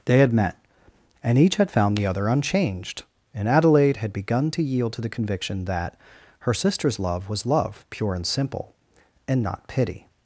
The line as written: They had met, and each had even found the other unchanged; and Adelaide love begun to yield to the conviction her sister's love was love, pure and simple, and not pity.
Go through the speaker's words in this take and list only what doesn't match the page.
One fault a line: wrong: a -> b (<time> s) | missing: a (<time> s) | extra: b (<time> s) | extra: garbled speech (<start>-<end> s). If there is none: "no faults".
missing: even (1.7 s)
wrong: love -> had (4.0 s)
extra: that (5.7 s)